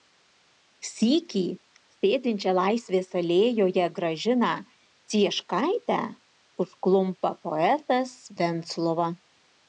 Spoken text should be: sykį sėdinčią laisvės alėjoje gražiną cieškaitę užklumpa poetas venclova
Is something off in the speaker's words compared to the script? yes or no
no